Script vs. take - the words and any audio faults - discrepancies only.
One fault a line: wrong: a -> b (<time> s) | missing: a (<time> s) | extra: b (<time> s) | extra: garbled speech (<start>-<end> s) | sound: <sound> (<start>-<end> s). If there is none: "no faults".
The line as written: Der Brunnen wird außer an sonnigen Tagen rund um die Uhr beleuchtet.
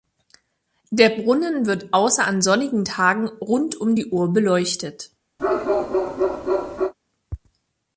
sound: bark (5.4-6.9 s)